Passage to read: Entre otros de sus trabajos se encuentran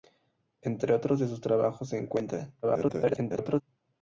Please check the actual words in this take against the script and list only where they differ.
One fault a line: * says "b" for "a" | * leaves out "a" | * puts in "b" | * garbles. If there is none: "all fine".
* garbles